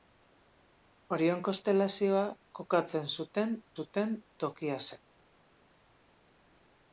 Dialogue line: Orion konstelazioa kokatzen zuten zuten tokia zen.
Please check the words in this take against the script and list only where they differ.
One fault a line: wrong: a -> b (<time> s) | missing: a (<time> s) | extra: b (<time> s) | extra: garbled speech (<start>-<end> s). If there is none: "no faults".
no faults